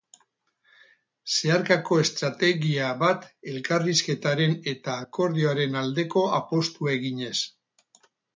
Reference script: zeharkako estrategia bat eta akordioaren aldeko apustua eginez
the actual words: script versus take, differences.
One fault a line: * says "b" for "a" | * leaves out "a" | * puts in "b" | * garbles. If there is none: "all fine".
* puts in "elkarrizketaren"